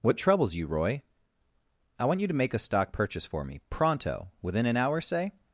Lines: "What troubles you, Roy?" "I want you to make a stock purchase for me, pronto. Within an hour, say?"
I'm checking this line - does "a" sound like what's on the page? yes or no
yes